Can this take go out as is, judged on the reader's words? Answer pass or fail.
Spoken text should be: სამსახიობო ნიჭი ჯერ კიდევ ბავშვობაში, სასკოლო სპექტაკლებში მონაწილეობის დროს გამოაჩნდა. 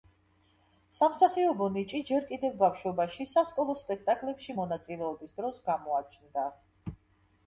pass